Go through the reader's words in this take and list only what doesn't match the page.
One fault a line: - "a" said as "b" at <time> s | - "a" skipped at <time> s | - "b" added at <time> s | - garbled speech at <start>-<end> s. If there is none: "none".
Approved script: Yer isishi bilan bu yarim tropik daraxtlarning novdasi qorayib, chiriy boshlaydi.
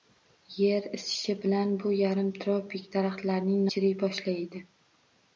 - "novdasi qorayib" skipped at 3.6 s